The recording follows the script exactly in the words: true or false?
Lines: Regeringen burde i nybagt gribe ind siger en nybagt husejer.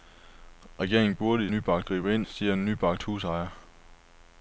true